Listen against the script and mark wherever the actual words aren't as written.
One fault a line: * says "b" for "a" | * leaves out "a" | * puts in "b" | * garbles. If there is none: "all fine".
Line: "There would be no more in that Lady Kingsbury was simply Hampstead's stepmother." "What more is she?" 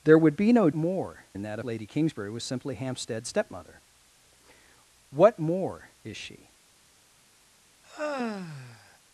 all fine